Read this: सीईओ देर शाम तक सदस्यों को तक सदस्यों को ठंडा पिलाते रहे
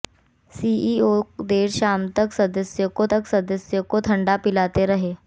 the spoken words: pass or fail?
pass